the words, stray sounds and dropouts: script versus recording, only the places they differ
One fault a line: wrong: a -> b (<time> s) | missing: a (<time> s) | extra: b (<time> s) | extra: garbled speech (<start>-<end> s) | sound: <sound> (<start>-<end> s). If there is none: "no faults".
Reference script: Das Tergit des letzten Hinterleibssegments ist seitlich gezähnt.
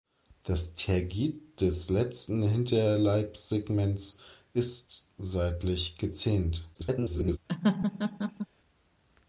extra: garbled speech (6.7-7.4 s)
sound: laugh (7.5-8.5 s)